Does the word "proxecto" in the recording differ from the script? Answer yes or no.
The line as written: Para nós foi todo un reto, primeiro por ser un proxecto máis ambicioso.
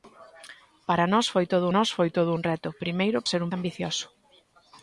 yes